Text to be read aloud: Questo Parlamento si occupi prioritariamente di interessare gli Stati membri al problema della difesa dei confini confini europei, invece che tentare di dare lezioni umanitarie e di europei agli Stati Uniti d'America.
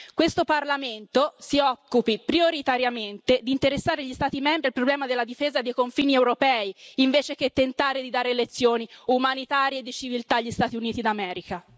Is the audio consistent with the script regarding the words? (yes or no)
no